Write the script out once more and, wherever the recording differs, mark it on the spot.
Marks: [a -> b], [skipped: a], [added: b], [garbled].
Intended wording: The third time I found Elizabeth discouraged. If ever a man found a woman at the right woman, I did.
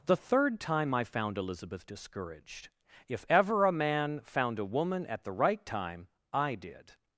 The third time I found Elizabeth discouraged. If ever a man found a woman at the right [woman, -> time] I did.